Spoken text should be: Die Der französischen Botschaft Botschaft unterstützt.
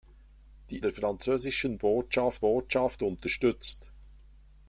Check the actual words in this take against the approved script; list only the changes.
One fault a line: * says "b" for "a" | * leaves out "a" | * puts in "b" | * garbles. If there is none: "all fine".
all fine